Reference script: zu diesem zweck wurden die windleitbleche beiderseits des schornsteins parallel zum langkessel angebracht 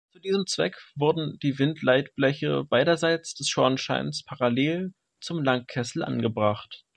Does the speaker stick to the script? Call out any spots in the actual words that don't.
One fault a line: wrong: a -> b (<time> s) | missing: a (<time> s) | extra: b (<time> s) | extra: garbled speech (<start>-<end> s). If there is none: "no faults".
no faults